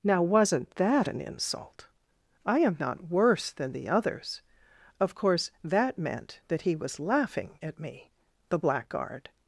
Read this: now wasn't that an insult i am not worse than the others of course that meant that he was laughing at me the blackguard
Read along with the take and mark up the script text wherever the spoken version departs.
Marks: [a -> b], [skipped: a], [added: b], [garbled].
now wasn't that an insult i am not worse than the others of course that meant that he was laughing at me the blackguard